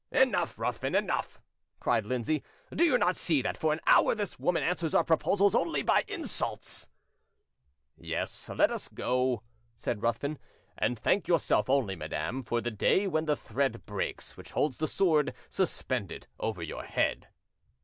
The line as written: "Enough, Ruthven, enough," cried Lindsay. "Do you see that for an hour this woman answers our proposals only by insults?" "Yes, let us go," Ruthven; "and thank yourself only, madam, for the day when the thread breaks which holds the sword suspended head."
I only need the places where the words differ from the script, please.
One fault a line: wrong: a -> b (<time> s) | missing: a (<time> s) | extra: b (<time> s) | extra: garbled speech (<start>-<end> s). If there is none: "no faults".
extra: not (3.0 s)
extra: said (9.8 s)
extra: over your (16.4 s)